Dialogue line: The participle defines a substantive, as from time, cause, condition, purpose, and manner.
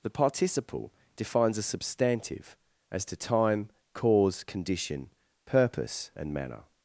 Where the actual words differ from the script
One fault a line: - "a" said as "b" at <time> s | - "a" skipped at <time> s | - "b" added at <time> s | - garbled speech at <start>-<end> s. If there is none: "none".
- "from" said as "to" at 3.1 s